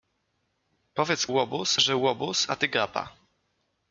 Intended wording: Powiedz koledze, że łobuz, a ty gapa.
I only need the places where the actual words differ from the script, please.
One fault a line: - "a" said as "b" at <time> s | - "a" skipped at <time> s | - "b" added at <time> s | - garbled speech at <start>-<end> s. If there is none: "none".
- "koledze" said as "łobuz" at 1.3 s